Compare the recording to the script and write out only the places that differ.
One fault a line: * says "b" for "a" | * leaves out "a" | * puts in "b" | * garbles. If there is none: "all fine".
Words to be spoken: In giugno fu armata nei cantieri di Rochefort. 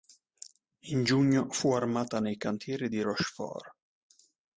all fine